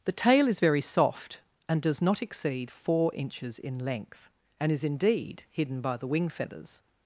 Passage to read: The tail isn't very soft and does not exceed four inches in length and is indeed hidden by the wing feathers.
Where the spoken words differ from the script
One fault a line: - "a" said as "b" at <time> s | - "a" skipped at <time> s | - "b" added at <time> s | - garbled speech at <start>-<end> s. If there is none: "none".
- "isn't" said as "is" at 0.5 s